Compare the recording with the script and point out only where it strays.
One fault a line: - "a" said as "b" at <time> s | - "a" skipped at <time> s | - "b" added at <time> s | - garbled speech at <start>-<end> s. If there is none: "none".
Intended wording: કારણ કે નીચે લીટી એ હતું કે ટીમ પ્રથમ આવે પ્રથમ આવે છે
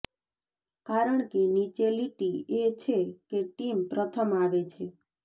- "હતું" said as "છે" at 2.8 s
- "પ્રથમ આવે" skipped at 4.6 s